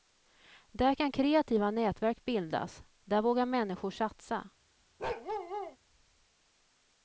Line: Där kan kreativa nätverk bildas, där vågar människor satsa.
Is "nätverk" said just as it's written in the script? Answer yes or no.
yes